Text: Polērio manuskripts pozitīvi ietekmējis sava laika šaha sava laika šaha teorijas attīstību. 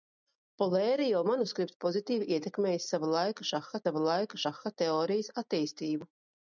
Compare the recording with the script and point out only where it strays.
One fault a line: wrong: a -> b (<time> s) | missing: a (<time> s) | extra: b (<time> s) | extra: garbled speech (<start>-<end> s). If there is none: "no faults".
no faults